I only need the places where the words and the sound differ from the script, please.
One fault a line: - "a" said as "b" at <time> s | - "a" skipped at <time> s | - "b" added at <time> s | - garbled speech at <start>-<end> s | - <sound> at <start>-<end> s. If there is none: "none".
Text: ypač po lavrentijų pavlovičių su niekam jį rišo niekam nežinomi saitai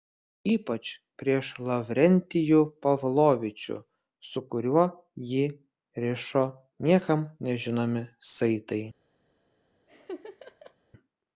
- "po" said as "prieš" at 1.2 s
- "niekam" said as "kuriuo" at 4.5 s
- laugh at 9.9-10.8 s